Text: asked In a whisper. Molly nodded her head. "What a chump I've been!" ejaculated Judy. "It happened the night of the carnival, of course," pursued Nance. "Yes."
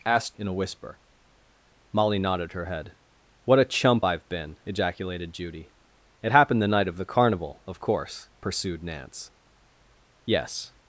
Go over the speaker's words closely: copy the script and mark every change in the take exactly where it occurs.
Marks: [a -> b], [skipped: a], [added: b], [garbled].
asked In a whisper. Molly nodded her head. "What a chump I've been!" ejaculated Judy. "It happened the night of the carnival, of course," pursued Nance. "Yes."